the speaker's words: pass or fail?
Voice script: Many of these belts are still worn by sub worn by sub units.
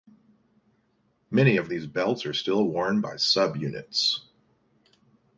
fail